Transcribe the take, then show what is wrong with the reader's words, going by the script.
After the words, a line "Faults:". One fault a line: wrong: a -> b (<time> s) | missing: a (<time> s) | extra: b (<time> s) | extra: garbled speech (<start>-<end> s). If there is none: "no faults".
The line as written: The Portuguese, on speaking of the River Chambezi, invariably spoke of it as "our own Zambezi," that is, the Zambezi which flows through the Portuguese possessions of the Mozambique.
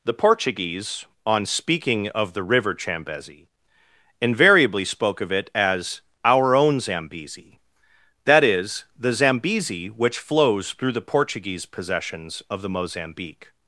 The Portuguese, on speaking of the River Chambezi, invariably spoke of it as "our own Zambezi," that is, the Zambezi which flows through the Portuguese possessions of the Mozambique.
Faults:
no faults